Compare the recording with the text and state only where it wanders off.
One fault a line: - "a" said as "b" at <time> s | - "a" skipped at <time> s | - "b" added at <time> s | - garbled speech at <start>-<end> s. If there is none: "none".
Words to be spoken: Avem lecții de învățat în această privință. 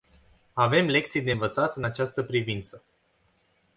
none